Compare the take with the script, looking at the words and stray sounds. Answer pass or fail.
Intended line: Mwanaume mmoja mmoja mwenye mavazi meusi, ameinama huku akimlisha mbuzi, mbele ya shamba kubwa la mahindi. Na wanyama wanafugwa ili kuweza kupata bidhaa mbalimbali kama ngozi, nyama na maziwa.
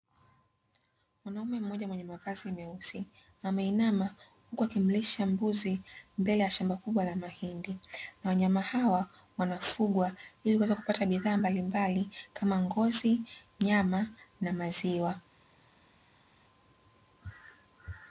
fail